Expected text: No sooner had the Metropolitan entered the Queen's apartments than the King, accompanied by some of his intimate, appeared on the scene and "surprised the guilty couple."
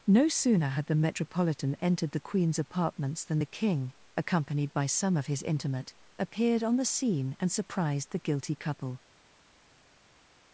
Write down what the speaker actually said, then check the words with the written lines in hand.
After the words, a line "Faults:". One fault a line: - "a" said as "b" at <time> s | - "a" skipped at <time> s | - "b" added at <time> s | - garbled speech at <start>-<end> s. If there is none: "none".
No sooner had the Metropolitan entered the Queen's apartments than the King, accompanied by some of his intimate, appeared on the scene and "surprised the guilty couple."
Faults:
none